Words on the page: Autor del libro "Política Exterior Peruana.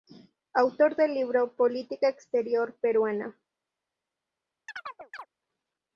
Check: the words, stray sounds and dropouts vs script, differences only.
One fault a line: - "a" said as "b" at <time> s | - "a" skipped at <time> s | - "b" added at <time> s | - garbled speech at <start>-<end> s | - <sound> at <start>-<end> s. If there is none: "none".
- chirp at 4.7-5.3 s